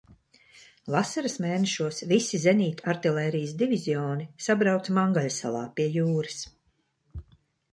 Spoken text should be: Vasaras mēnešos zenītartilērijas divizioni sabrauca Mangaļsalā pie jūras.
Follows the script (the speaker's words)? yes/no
no